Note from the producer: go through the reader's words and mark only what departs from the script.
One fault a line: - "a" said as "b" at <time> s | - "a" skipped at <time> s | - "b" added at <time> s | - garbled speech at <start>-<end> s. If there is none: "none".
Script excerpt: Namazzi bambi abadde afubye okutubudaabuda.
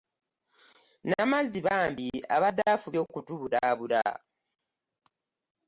none